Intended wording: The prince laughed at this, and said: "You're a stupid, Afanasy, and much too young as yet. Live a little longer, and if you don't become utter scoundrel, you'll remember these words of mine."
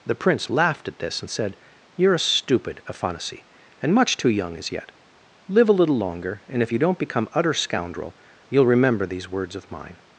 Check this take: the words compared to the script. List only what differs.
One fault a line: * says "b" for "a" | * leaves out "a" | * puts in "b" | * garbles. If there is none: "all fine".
all fine